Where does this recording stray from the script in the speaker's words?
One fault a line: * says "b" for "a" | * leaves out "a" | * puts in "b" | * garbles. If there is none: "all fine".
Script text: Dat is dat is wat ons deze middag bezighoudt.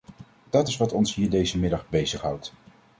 * leaves out "dat is"
* puts in "hier"